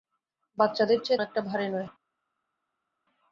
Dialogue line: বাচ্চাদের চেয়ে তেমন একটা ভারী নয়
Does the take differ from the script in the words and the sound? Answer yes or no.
yes